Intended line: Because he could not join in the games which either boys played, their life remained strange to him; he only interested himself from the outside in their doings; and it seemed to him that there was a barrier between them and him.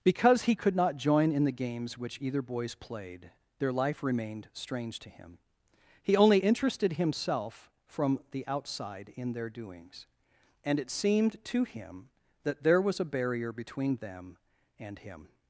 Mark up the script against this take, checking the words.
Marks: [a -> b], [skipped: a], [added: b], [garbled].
Because he could not join in the games which either boys played, their life remained strange to him; he only interested himself from the outside in their doings; and it seemed to him that there was a barrier between them and him.